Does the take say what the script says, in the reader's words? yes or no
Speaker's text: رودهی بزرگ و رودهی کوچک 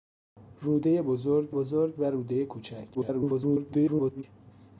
no